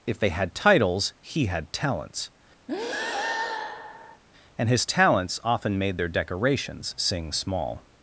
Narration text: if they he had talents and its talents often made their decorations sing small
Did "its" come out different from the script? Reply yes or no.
yes